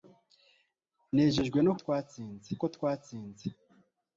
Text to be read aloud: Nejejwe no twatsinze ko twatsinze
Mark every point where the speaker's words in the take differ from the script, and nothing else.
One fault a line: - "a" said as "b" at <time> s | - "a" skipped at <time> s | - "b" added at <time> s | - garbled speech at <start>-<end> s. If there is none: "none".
none